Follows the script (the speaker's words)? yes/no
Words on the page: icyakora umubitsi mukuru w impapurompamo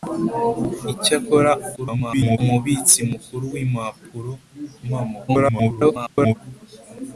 no